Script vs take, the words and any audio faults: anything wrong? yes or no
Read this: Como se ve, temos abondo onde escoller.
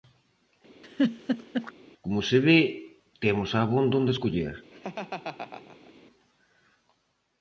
yes